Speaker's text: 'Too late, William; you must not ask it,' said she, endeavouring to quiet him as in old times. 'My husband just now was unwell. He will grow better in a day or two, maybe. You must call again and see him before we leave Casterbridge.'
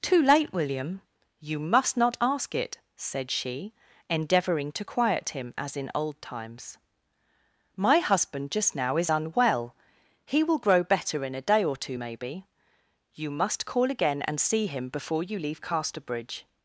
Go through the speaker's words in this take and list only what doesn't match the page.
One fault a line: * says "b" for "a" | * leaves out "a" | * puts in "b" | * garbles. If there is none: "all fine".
* says "is" for "was"
* says "you" for "we"